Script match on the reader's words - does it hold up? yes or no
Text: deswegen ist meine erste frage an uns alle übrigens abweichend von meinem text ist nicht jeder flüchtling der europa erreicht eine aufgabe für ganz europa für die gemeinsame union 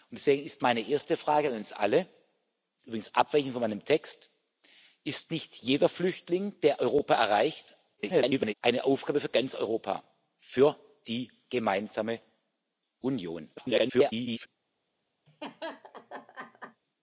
no